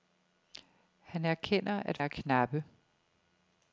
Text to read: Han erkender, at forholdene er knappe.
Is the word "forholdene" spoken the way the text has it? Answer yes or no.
no